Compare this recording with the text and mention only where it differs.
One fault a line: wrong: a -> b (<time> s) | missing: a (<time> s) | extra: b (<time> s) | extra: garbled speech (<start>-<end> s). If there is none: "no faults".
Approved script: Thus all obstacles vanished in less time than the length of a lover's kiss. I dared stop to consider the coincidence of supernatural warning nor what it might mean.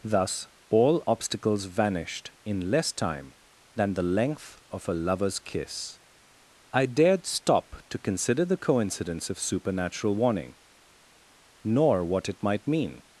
no faults